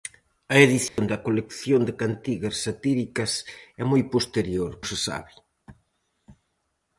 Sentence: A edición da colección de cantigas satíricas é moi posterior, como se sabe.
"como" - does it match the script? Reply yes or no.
no